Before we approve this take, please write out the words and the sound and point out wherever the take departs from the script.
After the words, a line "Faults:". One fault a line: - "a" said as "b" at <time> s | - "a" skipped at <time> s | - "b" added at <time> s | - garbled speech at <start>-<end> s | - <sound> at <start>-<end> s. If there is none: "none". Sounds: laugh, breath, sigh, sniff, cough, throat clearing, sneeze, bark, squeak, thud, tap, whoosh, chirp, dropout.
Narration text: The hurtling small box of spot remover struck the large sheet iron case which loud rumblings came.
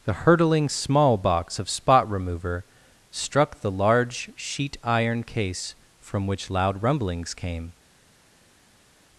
The hurtling small box of spot remover struck the large sheet iron case from which loud rumblings came.
Faults:
- "from" added at 6.0 s